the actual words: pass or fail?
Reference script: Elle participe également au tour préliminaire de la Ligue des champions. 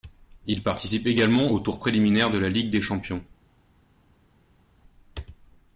fail